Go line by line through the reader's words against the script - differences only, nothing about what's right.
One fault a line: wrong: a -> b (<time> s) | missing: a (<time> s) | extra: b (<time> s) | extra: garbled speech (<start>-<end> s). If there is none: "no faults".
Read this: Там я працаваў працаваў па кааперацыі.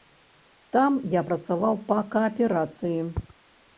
missing: працаваў (1.7 s)